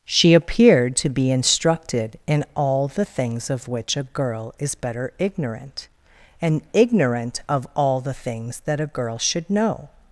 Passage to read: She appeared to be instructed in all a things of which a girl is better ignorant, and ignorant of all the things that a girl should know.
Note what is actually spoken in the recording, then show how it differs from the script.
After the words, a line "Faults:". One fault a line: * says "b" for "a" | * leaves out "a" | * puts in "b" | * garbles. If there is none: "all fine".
She appeared to be instructed in all the things of which a girl is better ignorant, and ignorant of all the things that a girl should know.
Faults:
* says "the" for "a"